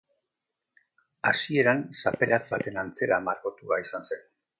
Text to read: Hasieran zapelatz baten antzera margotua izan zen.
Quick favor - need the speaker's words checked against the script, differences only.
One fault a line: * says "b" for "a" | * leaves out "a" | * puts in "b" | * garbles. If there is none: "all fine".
all fine